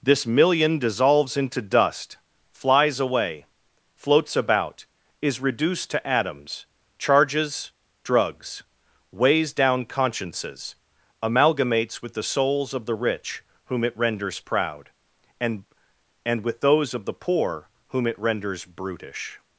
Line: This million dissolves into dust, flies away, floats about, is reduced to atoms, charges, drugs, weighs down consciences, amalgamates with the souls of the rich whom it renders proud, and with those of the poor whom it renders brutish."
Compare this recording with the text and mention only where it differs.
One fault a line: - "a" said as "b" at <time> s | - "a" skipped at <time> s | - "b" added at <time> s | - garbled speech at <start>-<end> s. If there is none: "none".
- "and" added at 16.2 s